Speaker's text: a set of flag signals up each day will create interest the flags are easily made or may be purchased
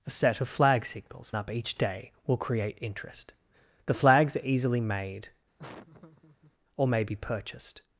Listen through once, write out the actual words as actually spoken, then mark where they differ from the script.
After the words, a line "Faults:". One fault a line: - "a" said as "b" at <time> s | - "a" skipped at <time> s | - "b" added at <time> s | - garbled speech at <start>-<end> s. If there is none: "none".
a set of flag signals up each day will create interest the flags are easily made or may be purchased
Faults:
none